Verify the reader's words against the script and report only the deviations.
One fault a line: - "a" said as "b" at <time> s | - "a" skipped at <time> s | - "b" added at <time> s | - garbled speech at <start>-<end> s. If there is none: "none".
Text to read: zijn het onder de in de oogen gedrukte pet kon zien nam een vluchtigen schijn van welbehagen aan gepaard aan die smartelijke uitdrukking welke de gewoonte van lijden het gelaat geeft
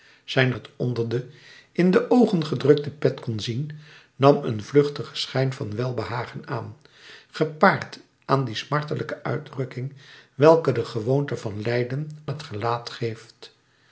none